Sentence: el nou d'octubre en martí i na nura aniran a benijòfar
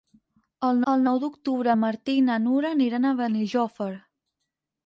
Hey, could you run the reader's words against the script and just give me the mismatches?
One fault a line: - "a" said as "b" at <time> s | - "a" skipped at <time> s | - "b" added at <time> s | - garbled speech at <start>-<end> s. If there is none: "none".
- "el" added at 0.9 s